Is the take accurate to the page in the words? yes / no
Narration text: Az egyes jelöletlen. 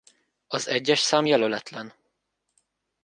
no